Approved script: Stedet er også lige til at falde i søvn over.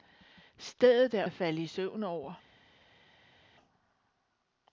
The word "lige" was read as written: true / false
false